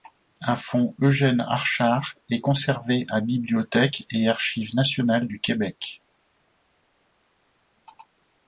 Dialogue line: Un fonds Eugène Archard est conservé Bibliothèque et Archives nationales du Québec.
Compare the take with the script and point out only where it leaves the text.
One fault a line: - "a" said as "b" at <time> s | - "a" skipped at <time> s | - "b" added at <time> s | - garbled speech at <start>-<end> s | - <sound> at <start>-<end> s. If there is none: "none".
- "à" added at 3.1 s